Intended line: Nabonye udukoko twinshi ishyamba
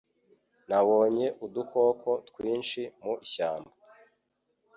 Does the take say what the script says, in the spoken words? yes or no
no